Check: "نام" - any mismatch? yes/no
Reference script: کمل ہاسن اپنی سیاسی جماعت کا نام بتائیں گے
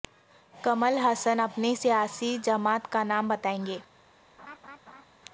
no